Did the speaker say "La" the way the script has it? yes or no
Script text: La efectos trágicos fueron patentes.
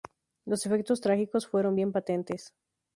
no